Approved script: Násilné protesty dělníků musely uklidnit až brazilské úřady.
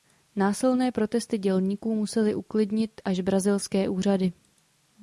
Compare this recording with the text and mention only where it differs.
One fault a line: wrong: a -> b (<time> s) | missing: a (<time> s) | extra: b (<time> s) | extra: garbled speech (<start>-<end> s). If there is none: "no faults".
no faults